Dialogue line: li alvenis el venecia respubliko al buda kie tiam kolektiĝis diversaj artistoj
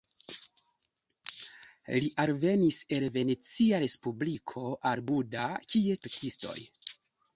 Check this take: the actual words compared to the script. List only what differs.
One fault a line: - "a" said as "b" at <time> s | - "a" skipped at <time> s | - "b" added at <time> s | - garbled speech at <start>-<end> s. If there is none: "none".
- "tiam kolektiĝis diversaj" skipped at 6.0 s